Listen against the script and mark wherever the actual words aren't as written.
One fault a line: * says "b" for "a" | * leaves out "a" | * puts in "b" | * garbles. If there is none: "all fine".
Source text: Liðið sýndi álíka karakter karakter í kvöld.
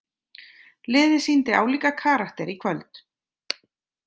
* leaves out "karakter"